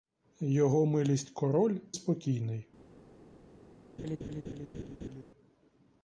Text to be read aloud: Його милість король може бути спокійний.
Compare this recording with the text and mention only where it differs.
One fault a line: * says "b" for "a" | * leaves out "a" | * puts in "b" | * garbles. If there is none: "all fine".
* leaves out "може бути"